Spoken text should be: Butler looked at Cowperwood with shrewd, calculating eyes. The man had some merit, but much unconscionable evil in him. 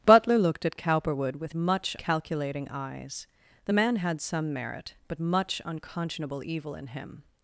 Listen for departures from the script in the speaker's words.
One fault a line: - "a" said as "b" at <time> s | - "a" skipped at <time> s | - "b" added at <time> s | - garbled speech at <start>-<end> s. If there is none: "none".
- "shrewd" said as "much" at 1.5 s